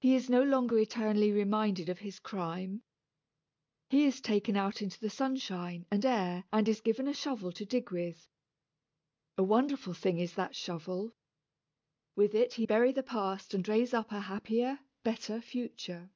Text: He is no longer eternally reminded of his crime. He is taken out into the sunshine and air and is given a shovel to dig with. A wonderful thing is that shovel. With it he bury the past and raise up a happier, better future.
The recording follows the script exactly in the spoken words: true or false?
true